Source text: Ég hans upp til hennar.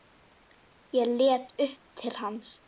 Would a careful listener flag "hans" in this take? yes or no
yes